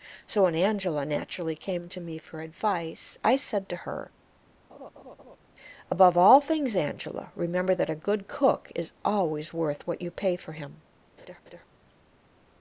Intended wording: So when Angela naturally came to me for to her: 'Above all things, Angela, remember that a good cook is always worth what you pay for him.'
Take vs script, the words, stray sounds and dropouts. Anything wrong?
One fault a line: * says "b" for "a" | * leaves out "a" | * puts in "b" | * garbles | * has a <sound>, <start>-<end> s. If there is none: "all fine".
* puts in "advice I said"
* has a laugh, 4.7-5.4 s
* has a laugh, 11.2-11.7 s